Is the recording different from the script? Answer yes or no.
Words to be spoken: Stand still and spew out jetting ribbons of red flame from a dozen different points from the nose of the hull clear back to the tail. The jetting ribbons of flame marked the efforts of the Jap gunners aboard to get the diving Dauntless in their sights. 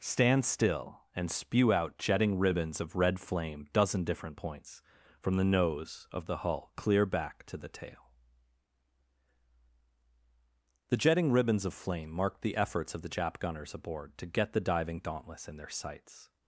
yes